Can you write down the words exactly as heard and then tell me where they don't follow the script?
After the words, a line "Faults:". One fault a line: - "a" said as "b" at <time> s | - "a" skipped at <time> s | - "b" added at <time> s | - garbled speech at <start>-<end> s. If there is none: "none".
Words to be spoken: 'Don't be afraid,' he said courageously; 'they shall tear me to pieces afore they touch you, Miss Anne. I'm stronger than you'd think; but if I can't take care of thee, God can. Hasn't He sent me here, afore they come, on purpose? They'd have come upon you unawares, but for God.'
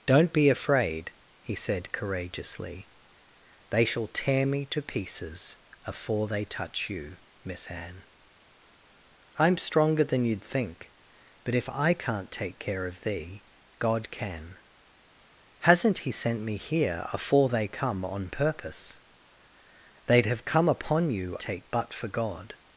'Don't be afraid,' he said courageously; 'they shall tear me to pieces afore they touch you, Miss Anne. I'm stronger than you'd think; but if I can't take care of thee, God can. Hasn't He sent me here, afore they come, on purpose? They'd have come upon you take, but for God.'
Faults:
- "unawares" said as "take" at 21.4 s